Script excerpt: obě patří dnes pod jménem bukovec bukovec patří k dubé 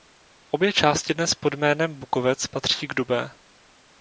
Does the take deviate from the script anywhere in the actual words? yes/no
yes